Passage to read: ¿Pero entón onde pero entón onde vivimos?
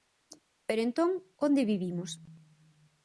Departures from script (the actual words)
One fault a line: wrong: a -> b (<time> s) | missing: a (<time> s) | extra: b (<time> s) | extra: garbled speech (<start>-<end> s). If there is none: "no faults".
missing: pero entón onde (1.7 s)